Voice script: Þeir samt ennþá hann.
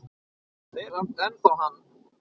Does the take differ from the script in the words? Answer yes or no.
no